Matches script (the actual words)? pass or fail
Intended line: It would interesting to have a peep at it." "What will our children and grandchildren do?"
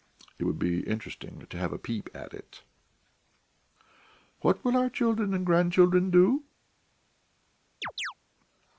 fail